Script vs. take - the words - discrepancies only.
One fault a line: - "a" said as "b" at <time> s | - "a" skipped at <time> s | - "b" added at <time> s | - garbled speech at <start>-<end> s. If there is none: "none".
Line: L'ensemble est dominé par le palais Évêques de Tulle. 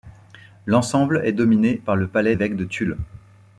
none